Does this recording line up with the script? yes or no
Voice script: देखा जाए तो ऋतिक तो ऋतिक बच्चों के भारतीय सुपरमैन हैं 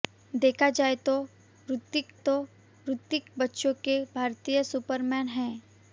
yes